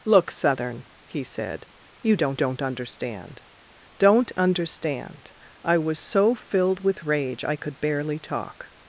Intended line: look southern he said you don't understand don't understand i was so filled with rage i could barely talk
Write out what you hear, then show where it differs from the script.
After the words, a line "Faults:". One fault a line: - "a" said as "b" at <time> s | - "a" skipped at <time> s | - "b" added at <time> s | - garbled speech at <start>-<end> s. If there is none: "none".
look southern he said you don't don't understand don't understand i was so filled with rage i could barely talk
Faults:
- "don't" added at 2.3 s